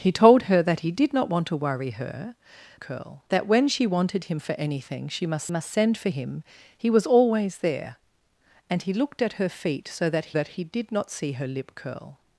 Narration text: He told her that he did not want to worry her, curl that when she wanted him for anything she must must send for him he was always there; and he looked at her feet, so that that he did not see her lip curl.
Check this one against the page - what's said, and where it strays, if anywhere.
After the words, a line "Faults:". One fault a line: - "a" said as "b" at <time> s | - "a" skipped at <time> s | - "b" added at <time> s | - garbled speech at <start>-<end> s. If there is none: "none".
He told her that he did not want to worry her, curl that when she wanted him for anything she must must send for him he was always there; and he looked at her feet, so that that he did not see her lip curl.
Faults:
none